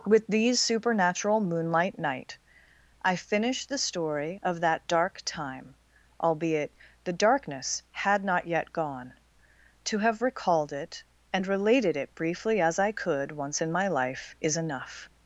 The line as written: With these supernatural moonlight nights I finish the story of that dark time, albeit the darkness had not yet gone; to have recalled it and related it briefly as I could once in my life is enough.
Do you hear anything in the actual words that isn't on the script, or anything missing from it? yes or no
yes